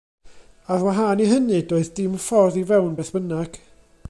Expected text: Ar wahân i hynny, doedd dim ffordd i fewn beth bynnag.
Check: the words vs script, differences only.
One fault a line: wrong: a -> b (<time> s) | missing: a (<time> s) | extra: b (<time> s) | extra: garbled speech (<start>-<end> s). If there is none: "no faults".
no faults